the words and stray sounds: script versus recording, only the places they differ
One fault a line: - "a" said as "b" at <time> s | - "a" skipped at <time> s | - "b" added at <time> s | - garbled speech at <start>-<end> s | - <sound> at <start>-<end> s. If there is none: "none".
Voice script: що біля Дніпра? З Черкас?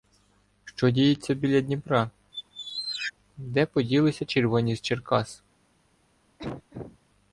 - "діється" added at 0.9 s
- squeak at 2.3-3.1 s
- "Де поділися червоні" added at 3.4 s
- cough at 6.4-7.0 s